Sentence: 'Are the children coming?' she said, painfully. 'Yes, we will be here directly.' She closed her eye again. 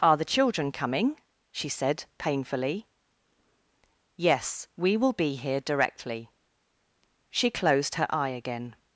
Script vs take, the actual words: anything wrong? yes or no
no